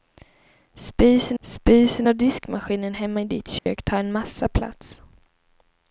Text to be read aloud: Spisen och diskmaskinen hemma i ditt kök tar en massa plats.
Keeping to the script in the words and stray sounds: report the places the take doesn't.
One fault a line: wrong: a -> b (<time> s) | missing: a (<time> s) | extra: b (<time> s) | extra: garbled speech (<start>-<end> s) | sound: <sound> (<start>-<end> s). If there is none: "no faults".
extra: spisen (1.4 s)
sound: dropout (3.6-3.7 s)